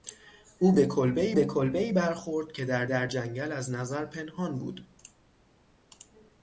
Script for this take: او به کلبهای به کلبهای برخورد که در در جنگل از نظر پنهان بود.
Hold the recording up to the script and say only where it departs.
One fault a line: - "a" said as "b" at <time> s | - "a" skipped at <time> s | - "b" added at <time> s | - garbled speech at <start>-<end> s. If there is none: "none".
none